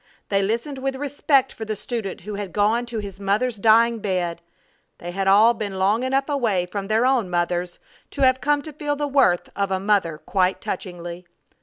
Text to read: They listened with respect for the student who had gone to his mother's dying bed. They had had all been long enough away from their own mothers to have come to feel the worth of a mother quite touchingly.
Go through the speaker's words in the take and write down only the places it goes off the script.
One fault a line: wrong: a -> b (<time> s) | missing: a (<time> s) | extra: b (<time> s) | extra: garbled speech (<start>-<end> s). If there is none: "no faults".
missing: had (5.3 s)